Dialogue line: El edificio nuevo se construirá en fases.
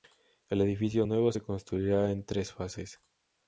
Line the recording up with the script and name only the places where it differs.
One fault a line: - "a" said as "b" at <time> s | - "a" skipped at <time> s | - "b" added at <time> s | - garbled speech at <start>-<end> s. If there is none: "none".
- "tres" added at 2.3 s